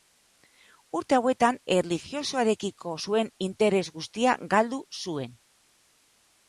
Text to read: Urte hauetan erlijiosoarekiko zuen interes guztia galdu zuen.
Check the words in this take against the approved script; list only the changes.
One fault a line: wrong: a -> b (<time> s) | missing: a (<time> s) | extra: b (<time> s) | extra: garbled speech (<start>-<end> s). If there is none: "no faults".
no faults